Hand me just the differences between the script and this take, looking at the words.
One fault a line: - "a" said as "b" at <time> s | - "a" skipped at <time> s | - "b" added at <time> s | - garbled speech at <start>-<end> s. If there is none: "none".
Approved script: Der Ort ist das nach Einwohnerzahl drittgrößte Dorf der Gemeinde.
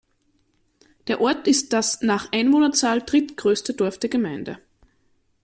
none